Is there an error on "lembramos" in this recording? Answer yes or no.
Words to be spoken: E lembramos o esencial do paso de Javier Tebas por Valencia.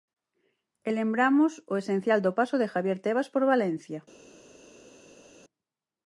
no